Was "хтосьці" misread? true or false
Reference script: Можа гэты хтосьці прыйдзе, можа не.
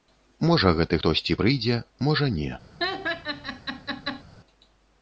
false